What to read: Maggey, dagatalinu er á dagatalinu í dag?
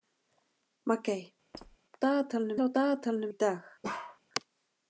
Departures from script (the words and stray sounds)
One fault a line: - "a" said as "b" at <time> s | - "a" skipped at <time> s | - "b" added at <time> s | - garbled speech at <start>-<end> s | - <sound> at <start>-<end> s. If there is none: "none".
- squeak at 1.5-1.8 s
- bark at 3.8-4.2 s